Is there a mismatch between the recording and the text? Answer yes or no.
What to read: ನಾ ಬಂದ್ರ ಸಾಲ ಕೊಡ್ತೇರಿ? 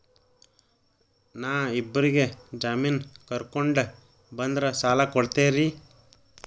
yes